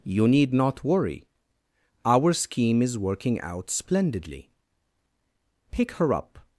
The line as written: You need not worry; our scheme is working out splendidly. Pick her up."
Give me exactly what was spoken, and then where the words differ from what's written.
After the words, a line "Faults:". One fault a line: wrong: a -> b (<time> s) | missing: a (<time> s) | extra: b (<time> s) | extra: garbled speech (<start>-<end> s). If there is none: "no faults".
You need not worry; our scheme is working out splendidly. Pick her up."
Faults:
no faults